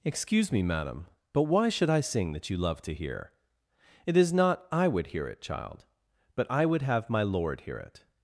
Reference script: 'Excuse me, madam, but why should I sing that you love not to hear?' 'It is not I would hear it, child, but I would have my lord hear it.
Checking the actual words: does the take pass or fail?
fail